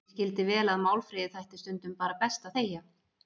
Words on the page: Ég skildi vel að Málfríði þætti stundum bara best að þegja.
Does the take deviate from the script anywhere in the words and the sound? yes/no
no